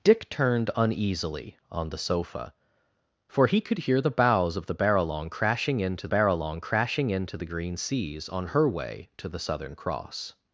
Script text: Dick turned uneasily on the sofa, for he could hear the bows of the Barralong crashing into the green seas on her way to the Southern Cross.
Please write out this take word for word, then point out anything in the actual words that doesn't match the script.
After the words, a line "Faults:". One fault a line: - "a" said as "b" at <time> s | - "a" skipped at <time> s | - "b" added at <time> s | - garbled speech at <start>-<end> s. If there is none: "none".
Dick turned uneasily on the sofa, for he could hear the bows of the Barralong crashing into Barralong crashing into the green seas on her way to the Southern Cross.
Faults:
- "Barralong crashing into" added at 6.1 s